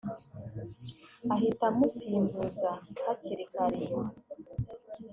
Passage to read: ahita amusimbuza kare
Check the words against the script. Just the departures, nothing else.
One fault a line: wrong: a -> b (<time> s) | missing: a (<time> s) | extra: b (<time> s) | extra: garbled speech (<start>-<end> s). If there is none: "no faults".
extra: hakiri (3.0 s)